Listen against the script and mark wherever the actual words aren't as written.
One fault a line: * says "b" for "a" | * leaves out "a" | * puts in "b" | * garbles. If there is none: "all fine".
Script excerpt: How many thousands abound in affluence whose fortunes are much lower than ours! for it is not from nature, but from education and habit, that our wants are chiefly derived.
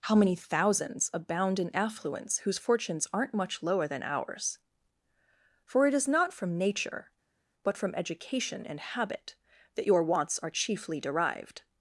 * says "aren't" for "are"
* says "your" for "our"